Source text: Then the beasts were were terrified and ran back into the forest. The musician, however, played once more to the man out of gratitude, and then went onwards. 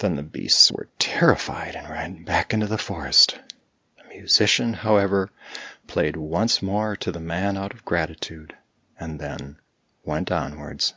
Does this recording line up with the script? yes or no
no